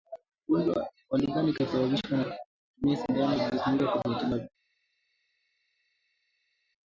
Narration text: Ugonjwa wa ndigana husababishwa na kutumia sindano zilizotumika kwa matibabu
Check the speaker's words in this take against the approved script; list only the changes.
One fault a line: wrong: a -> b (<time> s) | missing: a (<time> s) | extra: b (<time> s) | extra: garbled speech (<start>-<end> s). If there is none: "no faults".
no faults